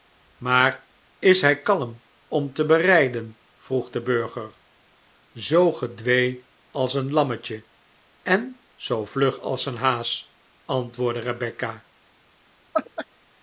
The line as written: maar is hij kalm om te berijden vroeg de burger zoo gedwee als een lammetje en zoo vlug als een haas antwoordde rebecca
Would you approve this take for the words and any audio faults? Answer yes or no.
no